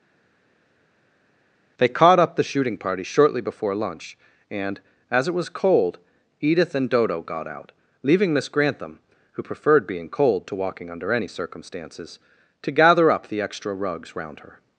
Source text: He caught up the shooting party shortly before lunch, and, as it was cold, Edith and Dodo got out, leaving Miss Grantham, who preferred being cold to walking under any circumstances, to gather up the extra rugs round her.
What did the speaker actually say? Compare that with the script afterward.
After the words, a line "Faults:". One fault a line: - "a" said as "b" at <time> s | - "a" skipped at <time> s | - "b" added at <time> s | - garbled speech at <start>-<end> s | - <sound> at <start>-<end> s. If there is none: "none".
They caught up the shooting party shortly before lunch, and, as it was cold, Edith and Dodo got out, leaving Miss Grantham, who preferred being cold to walking under any circumstances, to gather up the extra rugs round her.
Faults:
- "He" said as "They" at 1.8 s